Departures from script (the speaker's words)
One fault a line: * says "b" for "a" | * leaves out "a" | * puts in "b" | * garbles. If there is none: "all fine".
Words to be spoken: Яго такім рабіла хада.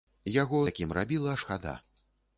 all fine